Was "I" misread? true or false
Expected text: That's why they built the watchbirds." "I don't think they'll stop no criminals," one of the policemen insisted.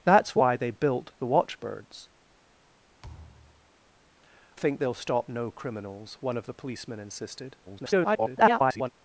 true